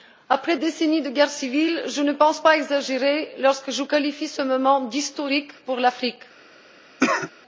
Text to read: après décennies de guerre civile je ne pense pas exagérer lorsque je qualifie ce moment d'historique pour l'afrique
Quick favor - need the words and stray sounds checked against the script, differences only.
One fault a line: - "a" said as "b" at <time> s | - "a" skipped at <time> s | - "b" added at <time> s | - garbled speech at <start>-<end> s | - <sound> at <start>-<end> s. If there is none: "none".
- cough at 7.0-7.3 s